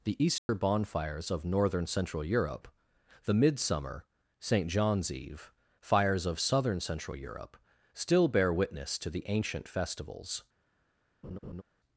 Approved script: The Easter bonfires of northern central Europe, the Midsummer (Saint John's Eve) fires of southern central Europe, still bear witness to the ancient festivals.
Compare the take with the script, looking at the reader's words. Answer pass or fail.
pass